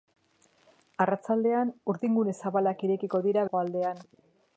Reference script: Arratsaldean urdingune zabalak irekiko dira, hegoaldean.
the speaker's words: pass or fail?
pass